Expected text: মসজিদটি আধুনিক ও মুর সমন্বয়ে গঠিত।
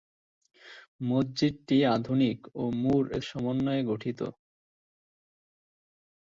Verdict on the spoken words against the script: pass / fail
pass